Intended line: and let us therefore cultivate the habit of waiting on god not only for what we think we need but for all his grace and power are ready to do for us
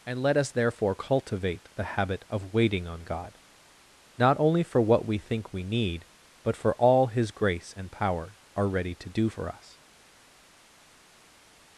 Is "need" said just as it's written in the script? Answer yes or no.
yes